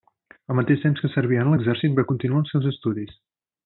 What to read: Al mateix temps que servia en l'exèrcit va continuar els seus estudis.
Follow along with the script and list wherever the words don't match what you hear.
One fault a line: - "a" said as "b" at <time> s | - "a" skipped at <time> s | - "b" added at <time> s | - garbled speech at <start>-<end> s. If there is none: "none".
none